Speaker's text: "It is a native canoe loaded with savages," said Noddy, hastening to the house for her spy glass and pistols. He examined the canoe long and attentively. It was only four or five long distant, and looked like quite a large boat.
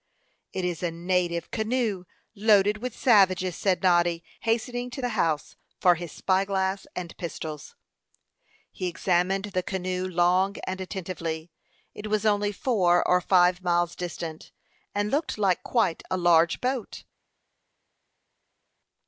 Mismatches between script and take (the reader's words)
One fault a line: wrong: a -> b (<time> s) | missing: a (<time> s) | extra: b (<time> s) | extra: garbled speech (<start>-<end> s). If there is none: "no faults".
wrong: her -> his (5.9 s)
wrong: long -> miles (13.6 s)